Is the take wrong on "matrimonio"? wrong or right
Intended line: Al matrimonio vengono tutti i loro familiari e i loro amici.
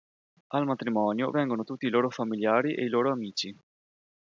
right